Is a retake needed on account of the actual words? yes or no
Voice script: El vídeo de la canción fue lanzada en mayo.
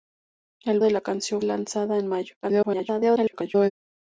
yes